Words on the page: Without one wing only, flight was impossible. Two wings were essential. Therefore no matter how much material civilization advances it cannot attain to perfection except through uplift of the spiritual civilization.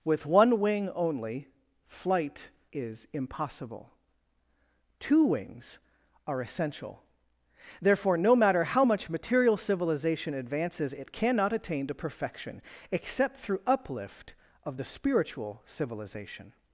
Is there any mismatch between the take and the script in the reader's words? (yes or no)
yes